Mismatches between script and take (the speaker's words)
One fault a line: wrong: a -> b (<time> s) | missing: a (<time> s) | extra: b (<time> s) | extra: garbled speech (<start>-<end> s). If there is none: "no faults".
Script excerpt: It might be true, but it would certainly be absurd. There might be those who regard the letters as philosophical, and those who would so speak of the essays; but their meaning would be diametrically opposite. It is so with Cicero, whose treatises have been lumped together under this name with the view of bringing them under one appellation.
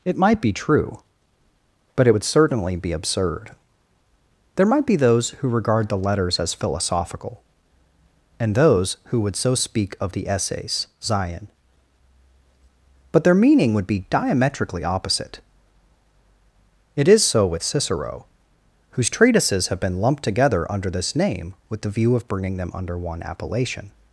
extra: zion (11.0 s)